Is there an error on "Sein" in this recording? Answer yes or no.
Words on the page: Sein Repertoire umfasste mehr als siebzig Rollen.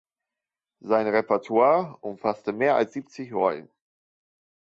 no